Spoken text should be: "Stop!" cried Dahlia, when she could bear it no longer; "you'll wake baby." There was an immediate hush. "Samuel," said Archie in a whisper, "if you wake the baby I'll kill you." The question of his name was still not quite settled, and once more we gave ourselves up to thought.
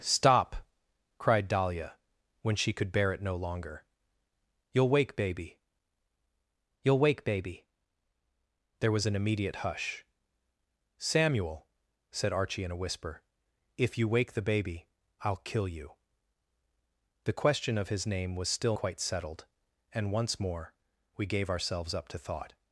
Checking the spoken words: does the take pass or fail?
fail